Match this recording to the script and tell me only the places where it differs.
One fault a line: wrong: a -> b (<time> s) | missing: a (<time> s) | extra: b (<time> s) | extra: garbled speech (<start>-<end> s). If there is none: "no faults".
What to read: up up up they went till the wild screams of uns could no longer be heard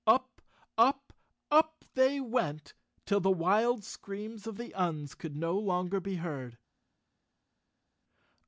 extra: the (4.6 s)